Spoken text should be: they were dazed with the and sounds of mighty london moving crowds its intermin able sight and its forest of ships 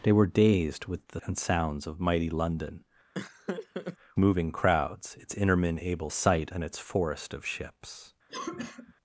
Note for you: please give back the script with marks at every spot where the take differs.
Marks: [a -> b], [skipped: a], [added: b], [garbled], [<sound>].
they were dazed with the and sounds of mighty london [laugh] moving crowds its intermin able sight and its forest of ships [cough]